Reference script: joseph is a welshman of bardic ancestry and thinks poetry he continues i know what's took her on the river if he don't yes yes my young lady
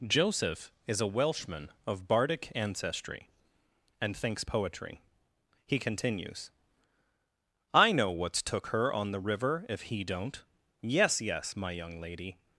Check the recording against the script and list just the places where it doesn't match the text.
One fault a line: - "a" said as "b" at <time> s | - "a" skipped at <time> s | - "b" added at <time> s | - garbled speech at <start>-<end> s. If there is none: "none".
none